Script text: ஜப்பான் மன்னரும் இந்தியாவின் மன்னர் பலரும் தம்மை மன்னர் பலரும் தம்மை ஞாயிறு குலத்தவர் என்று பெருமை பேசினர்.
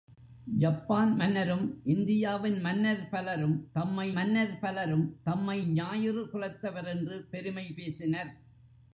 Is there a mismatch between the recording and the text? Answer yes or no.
no